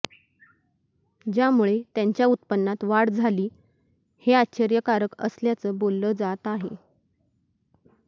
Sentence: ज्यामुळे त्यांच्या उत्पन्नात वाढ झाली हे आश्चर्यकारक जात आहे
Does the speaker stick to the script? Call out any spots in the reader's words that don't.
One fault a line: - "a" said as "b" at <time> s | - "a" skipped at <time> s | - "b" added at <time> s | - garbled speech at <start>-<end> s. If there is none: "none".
- "असल्याचं बोललं" added at 5.2 s